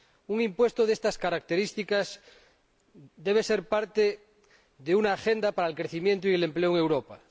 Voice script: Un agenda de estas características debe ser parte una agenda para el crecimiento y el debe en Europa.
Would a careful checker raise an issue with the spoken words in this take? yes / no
yes